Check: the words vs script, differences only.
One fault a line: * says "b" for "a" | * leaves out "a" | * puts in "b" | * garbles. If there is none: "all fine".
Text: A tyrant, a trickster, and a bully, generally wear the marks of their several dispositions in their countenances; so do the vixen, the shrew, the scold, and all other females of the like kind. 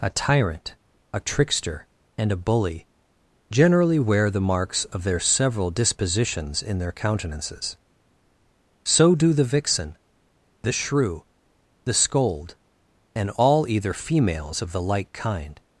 * says "either" for "other"